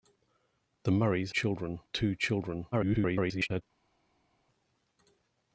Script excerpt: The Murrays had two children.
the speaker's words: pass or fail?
fail